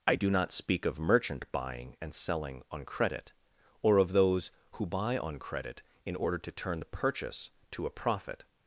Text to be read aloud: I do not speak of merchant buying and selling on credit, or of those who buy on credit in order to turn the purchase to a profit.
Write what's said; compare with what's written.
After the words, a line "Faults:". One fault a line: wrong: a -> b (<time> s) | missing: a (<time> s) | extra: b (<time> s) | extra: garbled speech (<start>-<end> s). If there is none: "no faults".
I do not speak of merchant buying and selling on credit, or of those who buy on credit in order to turn the purchase to a profit.
Faults:
no faults